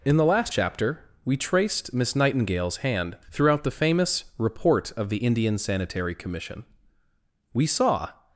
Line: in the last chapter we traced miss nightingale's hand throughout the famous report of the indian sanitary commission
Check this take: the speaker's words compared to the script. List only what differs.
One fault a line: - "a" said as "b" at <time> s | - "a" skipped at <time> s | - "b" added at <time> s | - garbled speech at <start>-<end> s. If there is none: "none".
- "we saw" added at 7.5 s